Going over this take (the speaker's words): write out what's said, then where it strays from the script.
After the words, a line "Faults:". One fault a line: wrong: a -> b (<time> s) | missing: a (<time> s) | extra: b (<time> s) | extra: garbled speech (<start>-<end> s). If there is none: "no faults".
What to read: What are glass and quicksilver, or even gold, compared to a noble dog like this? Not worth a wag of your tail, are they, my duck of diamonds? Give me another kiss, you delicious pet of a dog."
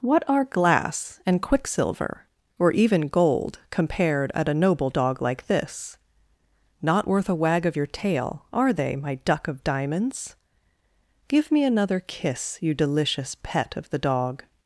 What are glass and quicksilver, or even gold, compared at a noble dog like this? Not worth a wag of your tail, are they, my duck of diamonds? Give me another kiss, you delicious pet of the dog."
Faults:
wrong: to -> at (4.3 s)
wrong: a -> the (13.9 s)